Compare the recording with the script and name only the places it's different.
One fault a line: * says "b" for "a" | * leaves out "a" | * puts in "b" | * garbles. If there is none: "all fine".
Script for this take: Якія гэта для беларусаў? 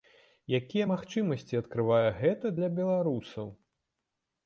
* puts in "магчымасці адкрывае"